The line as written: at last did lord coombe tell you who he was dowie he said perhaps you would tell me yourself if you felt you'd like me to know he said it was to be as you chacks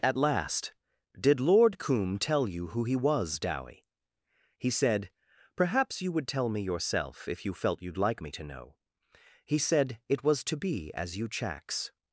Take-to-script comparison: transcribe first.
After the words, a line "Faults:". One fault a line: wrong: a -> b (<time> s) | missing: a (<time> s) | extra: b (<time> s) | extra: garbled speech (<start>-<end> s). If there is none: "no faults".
at last did lord coombe tell you who he was dowie he said perhaps you would tell me yourself if you felt you'd like me to know he said it was to be as you chacks
Faults:
no faults